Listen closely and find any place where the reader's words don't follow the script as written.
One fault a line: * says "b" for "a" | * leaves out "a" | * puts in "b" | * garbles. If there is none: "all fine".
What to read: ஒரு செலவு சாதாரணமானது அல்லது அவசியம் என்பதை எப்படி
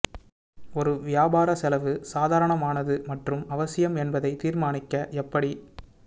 * puts in "வியாபார"
* says "மற்றும்" for "அல்லது"
* puts in "தீர்மானிக்க"